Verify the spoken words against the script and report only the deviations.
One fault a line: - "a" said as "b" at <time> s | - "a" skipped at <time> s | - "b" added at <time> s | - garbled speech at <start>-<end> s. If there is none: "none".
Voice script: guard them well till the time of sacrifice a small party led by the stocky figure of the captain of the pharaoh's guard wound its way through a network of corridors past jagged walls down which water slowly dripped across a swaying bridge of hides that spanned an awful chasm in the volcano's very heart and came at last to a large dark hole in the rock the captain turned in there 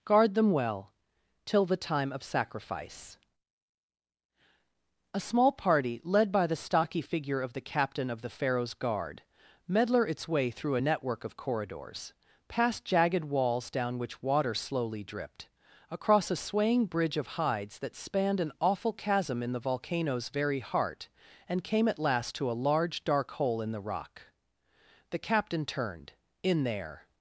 - "wound" said as "medler" at 9.7 s